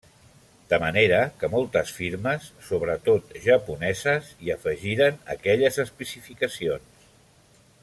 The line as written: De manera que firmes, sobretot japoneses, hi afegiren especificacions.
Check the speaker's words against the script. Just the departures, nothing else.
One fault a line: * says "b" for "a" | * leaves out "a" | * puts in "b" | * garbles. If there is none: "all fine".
* puts in "moltes"
* puts in "aquelles"